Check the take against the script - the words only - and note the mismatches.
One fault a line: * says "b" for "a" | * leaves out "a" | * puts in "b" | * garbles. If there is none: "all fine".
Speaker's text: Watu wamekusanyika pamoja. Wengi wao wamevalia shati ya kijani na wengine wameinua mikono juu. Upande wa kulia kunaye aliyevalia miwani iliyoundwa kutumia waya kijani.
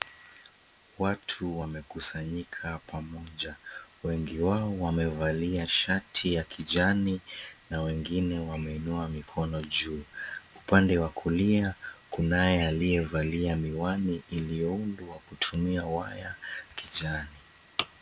all fine